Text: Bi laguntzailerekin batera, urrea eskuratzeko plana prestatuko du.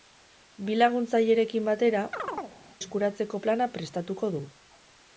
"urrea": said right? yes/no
no